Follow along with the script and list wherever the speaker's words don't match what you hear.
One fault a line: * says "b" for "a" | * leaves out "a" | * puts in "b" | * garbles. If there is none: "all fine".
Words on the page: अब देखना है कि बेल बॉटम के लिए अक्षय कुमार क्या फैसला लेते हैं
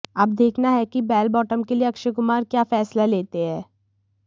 all fine